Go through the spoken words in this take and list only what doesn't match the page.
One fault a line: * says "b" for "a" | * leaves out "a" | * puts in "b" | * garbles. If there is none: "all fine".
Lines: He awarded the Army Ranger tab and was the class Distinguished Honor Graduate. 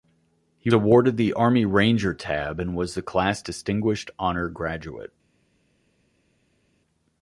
all fine